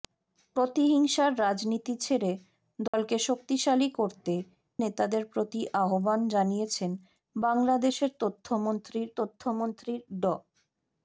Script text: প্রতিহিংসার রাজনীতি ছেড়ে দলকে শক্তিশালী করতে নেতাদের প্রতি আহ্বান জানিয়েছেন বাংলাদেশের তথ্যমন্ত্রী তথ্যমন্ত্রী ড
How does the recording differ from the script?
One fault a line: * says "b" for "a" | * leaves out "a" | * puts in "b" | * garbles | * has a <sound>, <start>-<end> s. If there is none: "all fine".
* has a dropout, 2.9-2.9 s